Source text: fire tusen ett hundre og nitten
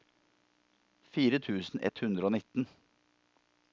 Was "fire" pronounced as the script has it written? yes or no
yes